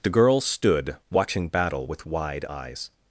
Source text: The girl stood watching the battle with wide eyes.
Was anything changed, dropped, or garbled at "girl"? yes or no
no